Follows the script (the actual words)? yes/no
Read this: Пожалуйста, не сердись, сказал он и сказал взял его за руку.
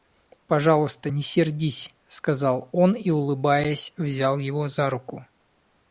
no